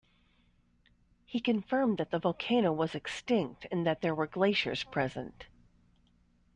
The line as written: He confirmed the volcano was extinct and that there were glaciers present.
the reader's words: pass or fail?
fail